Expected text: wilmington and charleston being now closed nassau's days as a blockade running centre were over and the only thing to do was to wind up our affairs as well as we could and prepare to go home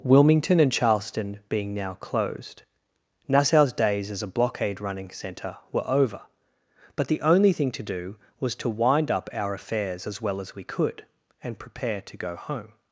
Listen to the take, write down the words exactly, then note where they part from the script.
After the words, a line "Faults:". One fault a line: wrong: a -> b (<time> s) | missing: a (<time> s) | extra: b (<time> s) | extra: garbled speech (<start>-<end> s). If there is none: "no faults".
wilmington and charleston being now closed nassau's days as a blockade running centre were over but the only thing to do was to wind up our affairs as well as we could and prepare to go home
Faults:
wrong: and -> but (7.0 s)